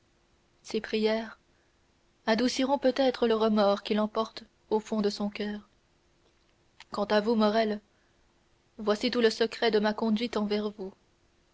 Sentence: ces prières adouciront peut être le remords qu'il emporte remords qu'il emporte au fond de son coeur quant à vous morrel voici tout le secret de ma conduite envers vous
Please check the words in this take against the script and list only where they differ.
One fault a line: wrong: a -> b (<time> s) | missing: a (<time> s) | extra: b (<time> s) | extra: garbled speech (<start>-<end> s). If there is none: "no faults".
missing: remords qu'il emporte (4.4 s)